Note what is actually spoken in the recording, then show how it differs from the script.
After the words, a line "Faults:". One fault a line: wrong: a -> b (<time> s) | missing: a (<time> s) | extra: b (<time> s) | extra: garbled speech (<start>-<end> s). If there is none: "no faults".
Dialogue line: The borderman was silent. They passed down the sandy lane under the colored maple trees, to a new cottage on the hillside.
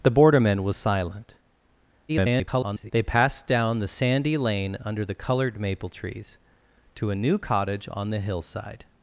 The borderman was silent. [garbled] They passed down the sandy lane under the colored maple trees, to a new cottage on the hillside.
Faults:
extra: garbled speech (2.1-2.9 s)